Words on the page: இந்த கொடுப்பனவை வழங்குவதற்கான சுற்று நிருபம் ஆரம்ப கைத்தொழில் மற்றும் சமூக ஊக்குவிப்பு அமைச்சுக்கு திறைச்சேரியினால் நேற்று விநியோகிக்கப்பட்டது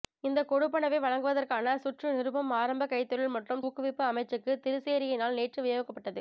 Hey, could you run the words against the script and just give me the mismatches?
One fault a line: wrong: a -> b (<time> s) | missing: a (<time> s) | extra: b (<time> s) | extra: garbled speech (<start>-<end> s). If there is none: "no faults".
missing: சமூக (3.6 s)